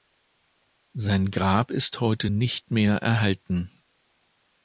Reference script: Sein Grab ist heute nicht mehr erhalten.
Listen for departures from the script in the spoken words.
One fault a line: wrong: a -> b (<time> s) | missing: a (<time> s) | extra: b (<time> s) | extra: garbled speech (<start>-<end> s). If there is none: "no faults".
no faults